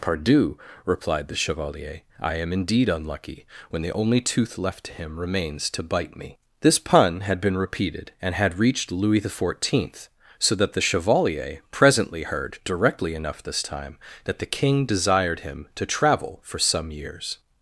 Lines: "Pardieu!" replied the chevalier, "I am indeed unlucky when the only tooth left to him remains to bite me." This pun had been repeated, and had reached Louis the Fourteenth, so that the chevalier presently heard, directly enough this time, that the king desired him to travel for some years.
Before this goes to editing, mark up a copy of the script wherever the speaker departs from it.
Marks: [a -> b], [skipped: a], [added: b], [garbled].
"Pardieu!" replied the chevalier, "I am indeed unlucky when the only tooth left to him remains to bite me." This pun had been repeated, and had reached Louis the Fourteenth, so that the chevalier presently heard, directly enough this time, that the king desired him to travel for some years.